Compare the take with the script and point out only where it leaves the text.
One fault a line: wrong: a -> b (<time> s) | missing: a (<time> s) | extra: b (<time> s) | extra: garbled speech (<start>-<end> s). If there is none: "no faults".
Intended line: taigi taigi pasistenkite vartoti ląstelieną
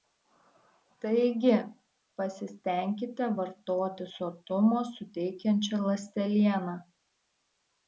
missing: taigi (1.6 s)
extra: sotumo suteikiančią (4.1 s)